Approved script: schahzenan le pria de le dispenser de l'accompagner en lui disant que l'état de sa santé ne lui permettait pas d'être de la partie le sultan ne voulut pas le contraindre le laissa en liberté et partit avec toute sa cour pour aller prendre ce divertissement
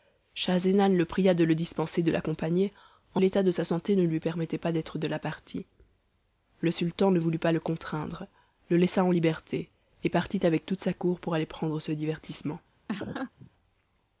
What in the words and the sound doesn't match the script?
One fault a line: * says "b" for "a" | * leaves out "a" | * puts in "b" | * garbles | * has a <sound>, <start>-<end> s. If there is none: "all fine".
* leaves out "lui disant que"
* has a laugh, 12.9-13.5 s